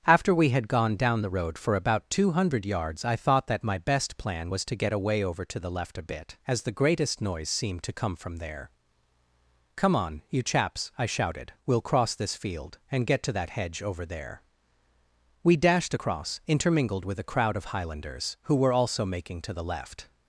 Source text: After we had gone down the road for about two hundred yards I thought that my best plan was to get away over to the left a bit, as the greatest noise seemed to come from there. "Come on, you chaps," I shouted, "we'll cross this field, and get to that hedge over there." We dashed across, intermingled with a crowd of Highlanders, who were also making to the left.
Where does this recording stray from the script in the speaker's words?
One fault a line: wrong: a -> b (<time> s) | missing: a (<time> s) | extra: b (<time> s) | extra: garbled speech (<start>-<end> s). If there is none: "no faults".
no faults